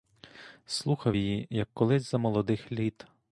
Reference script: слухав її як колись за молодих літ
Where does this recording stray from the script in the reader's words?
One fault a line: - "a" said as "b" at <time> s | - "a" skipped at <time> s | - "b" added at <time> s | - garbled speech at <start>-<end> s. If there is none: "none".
none